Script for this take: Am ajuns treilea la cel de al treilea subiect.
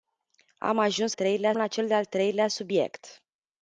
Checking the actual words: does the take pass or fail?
pass